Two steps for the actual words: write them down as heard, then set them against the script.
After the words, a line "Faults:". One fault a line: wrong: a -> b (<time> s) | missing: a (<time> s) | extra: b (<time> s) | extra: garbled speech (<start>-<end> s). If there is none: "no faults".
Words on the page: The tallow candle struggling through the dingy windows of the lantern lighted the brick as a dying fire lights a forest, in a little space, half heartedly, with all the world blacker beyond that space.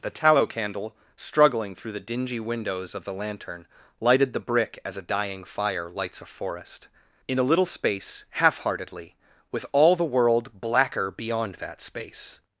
The tallow candle struggling through the dingy windows of the lantern lighted the brick as a dying fire lights a forest, in a little space, half heartedly, with all the world blacker beyond that space.
Faults:
no faults